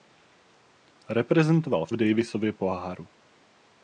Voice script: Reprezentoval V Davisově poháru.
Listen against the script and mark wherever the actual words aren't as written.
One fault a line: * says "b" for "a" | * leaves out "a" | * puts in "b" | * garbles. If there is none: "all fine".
all fine